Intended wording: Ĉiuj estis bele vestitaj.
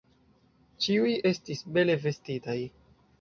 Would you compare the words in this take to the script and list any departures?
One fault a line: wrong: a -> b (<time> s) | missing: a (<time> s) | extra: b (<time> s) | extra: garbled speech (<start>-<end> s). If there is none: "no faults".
no faults